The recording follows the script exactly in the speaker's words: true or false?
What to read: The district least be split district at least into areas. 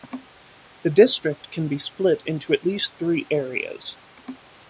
false